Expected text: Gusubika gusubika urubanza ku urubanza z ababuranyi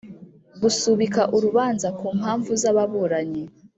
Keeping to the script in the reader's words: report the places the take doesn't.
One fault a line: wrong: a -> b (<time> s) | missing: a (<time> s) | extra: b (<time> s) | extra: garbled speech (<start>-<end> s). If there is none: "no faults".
missing: gusubika (1.2 s)
wrong: urubanza -> mpamvu (2.2 s)